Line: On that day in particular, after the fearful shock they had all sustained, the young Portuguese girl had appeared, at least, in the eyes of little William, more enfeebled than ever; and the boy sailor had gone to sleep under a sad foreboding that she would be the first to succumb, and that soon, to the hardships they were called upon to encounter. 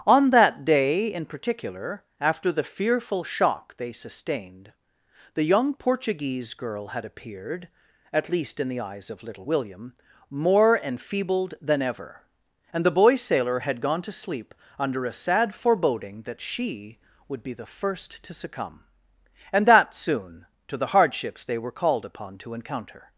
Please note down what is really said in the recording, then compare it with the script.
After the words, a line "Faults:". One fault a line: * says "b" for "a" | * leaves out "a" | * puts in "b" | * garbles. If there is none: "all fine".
On that day in particular, after the fearful shock they sustained, the young Portuguese girl had appeared, at least, in the eyes of little William, more enfeebled than ever; and the boy sailor had gone to sleep under a sad foreboding that she would be the first to succumb, and that soon, to the hardships they were called upon to encounter.
Faults:
* leaves out "had all"